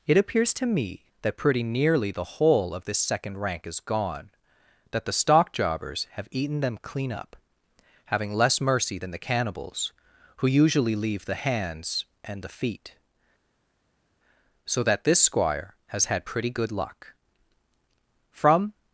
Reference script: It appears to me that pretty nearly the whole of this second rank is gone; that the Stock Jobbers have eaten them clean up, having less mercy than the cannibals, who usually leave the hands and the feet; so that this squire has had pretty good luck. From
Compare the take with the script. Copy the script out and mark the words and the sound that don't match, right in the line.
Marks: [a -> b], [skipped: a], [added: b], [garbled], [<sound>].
It appears to me that pretty nearly the whole of this second rank is gone; that the Stock Jobbers have eaten them clean up, having less mercy than the cannibals, who usually leave the hands and the feet; so that this squire has had pretty good luck. From